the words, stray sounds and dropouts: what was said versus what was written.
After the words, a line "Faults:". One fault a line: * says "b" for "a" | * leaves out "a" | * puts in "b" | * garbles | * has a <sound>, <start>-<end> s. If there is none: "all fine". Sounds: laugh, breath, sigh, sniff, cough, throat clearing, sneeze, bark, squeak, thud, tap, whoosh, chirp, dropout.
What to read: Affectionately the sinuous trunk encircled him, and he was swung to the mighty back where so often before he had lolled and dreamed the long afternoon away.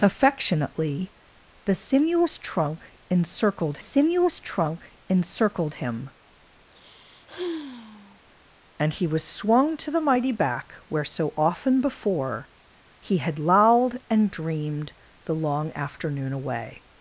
Affectionately the sinuous trunk encircled sinuous trunk encircled him, and he was swung to the mighty back where so often before he had lolled and dreamed the long afternoon away.
Faults:
* puts in "sinuous trunk encircled"
* has a sigh, 6.7-8.2 s